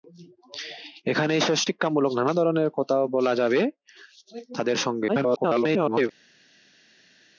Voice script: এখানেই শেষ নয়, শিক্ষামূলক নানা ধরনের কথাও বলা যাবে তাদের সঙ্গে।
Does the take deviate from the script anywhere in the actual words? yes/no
yes